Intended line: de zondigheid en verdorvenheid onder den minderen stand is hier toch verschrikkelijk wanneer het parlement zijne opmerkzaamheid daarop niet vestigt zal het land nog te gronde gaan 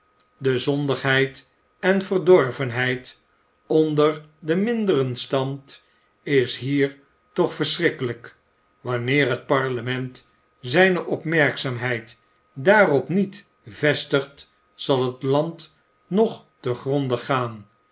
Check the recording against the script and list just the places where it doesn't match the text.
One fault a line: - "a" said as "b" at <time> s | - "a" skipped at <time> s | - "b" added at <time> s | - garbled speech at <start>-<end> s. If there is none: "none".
none